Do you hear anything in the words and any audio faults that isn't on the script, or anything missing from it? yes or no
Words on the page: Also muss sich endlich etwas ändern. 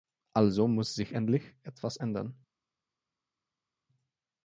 no